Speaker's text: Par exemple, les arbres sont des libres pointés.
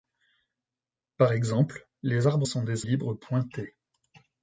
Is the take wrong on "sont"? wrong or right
right